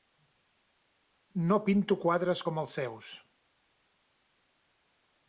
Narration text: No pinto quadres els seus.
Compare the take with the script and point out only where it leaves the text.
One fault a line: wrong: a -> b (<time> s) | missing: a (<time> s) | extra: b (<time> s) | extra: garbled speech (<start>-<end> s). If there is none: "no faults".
extra: com (2.4 s)